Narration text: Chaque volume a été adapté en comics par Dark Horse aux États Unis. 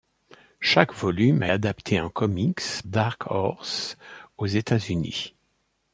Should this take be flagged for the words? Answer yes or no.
yes